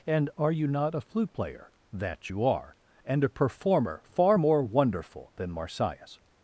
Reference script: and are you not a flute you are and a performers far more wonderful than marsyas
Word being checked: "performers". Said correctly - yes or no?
no